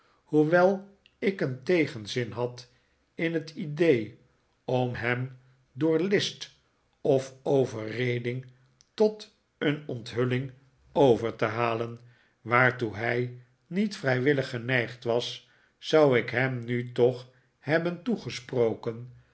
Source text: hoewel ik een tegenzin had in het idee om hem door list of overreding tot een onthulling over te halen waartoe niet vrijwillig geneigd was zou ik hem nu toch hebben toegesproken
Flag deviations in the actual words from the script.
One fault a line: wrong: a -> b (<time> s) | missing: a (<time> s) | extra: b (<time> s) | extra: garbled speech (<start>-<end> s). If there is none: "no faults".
extra: hij (13.0 s)